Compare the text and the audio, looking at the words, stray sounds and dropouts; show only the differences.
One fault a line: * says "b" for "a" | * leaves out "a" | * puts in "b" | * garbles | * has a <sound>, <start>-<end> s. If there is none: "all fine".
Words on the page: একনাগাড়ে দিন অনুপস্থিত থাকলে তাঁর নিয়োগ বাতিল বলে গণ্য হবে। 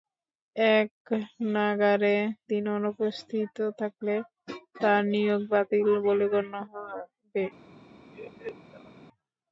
* has a laugh, 8.1-8.9 s